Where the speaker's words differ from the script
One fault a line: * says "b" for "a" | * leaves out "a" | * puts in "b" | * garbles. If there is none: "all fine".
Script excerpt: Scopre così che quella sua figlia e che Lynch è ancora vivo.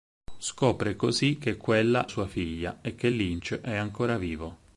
all fine